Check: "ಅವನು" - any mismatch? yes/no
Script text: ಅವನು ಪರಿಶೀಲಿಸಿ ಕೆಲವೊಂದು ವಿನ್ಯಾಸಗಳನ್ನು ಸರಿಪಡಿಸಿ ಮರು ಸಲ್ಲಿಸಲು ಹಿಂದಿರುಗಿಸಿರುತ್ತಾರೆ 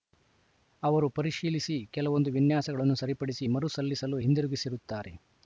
yes